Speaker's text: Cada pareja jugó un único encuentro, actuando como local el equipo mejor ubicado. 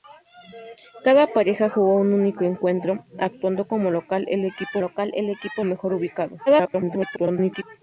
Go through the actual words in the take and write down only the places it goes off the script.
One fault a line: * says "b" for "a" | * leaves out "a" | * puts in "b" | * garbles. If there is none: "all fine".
* puts in "local el equipo"
* garbles